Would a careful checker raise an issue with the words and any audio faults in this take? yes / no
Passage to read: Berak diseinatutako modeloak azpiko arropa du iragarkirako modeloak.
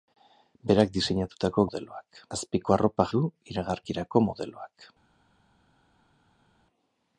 no